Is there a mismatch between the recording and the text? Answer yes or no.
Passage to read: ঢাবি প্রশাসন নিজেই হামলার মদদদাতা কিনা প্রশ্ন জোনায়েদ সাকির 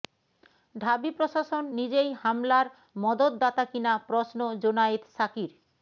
no